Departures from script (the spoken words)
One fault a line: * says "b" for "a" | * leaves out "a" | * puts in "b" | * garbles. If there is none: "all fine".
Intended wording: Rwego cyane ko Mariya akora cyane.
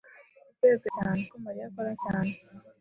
all fine